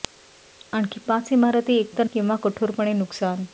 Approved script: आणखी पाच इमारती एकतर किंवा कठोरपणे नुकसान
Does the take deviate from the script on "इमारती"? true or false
false